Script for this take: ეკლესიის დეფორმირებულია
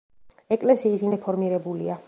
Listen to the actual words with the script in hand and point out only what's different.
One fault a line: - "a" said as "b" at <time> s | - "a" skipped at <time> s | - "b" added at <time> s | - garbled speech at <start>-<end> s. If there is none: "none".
none